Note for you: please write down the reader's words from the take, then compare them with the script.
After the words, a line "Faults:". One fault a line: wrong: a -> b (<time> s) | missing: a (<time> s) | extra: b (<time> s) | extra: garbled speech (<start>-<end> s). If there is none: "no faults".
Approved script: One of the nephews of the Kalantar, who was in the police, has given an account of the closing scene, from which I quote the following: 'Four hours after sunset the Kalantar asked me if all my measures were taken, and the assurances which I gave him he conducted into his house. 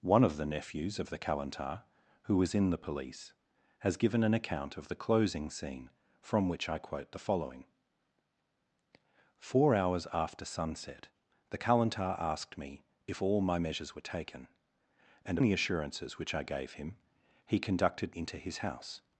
One of the nephews of the Kalantar, who was in the police, has given an account of the closing scene, from which I quote the following: 'Four hours after sunset the Kalantar asked me if all my measures were taken, and the assurances which I gave him he conducted into his house.
Faults:
no faults